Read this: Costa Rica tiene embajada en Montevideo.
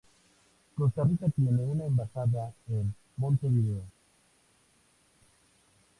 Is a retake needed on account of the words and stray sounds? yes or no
yes